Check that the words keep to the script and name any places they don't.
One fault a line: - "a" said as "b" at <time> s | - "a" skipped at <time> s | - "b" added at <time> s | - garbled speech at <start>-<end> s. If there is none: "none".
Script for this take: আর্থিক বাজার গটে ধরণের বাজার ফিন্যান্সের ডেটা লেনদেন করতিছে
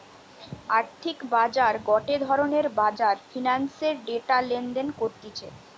none